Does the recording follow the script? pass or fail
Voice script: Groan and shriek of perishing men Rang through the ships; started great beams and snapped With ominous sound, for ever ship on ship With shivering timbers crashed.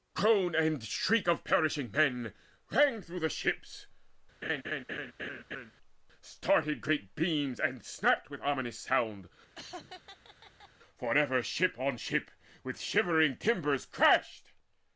pass